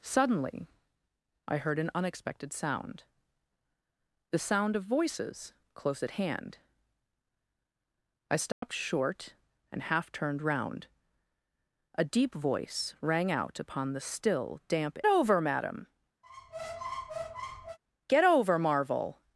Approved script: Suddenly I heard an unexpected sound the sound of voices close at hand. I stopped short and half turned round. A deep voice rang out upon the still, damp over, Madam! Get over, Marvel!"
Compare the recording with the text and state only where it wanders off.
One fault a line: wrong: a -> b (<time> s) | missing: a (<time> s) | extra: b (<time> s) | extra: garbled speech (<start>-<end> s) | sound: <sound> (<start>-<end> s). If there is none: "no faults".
sound: dropout (8.5-8.6 s)
sound: squeak (16.2-17.8 s)